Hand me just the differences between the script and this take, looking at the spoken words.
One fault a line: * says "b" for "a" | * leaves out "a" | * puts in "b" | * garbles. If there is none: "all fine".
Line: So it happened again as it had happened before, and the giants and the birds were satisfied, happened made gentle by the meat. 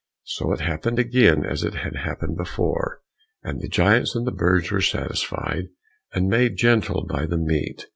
* says "and" for "happened"